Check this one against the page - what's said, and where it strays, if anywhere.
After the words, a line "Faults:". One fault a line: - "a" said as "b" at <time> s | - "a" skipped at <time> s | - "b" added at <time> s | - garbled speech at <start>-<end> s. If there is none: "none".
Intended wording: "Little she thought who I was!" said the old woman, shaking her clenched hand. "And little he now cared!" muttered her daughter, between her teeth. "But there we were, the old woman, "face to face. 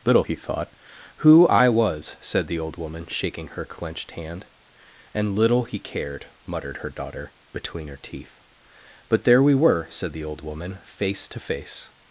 "Little he thought who I was!" said the old woman, shaking her clenched hand. "And little he cared!" muttered her daughter, between her teeth. "But there we were, said the old woman, "face to face.
Faults:
- "she" said as "he" at 0.2 s
- "now" skipped at 5.8 s
- "said" added at 9.9 s